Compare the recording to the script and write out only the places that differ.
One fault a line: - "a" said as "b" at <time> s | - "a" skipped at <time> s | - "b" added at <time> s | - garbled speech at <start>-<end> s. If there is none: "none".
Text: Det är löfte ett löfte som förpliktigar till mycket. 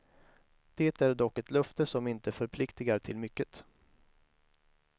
- "löfte" said as "dock" at 1.1 s
- "inte" added at 2.1 s